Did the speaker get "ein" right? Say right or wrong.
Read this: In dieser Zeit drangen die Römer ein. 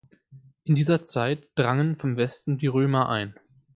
right